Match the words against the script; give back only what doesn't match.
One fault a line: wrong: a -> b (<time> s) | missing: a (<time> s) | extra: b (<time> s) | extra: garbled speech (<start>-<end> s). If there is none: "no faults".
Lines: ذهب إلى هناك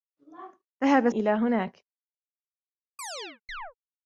no faults